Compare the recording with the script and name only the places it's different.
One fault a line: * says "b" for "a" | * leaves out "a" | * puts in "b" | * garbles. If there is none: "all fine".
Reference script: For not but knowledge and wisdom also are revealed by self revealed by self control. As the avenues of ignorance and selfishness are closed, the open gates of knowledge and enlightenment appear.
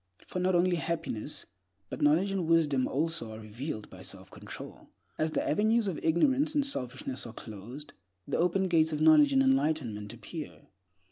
* puts in "only happiness"
* leaves out "revealed by self"